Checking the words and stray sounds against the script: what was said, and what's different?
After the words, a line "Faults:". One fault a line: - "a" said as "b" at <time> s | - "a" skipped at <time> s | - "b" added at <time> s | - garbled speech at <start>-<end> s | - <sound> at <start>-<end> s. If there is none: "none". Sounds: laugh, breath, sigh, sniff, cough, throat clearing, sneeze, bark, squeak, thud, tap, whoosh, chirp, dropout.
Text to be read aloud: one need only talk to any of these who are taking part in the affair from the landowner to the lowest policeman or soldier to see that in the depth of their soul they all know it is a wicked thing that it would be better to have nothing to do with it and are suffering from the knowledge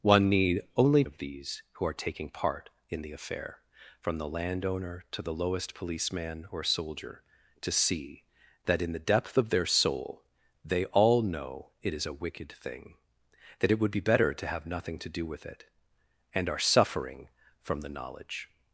one need only of these who are taking part in the affair from the landowner to the lowest policeman or soldier to see that in the depth of their soul they all know it is a wicked thing that it would be better to have nothing to do with it and are suffering from the knowledge
Faults:
- "talk to any" skipped at 1.0 s